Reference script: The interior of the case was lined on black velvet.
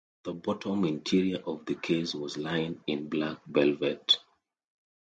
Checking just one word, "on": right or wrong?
wrong